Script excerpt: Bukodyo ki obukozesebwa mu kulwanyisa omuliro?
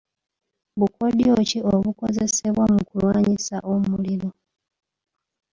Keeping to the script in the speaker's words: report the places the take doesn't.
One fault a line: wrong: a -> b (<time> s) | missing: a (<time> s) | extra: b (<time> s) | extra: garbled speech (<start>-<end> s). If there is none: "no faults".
no faults